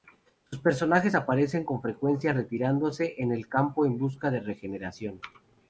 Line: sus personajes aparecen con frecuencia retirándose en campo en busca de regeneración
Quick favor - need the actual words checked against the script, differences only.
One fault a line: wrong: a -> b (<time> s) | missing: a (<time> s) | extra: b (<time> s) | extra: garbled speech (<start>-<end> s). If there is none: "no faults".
extra: el (3.3 s)